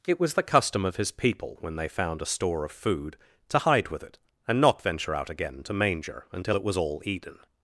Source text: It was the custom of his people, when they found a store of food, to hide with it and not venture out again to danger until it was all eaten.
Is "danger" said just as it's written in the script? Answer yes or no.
no